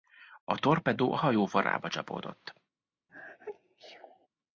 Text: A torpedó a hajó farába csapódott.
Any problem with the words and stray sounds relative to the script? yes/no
yes